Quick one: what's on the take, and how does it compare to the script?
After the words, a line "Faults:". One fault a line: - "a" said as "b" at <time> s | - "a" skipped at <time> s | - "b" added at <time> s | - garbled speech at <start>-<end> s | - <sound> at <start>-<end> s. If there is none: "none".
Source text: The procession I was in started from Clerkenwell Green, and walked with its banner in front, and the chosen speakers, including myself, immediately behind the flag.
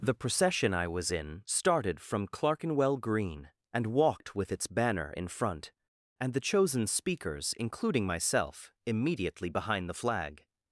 The procession I was in started from Clerkenwell Green, and walked with its banner in front, and the chosen speakers, including myself, immediately behind the flag.
Faults:
none